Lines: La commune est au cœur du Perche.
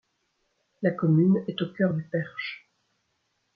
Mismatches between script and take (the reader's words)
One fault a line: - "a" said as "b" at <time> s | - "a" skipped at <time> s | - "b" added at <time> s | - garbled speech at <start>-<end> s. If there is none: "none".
none